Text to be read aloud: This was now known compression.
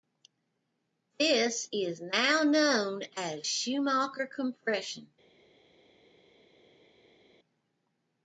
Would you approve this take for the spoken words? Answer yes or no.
no